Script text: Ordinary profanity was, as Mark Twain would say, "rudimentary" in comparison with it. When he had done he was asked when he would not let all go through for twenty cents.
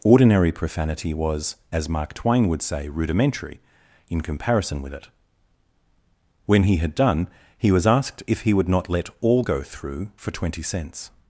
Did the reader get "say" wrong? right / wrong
right